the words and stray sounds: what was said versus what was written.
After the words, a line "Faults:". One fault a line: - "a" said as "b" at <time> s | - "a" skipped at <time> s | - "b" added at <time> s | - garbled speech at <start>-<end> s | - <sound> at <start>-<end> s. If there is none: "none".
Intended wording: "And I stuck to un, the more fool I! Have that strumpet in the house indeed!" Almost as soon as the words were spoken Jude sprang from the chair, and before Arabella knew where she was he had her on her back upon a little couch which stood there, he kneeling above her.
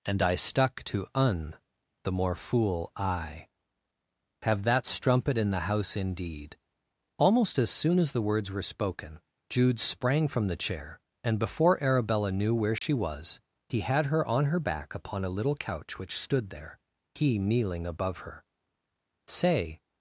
"And I stuck to un, the more fool I! Have that strumpet in the house indeed!" Almost as soon as the words were spoken Jude sprang from the chair, and before Arabella knew where she was he had her on her back upon a little couch which stood there, he kneeling above her. "Say
Faults:
- dropout at 12.8-12.8 s
- "Say" added at 19.3 s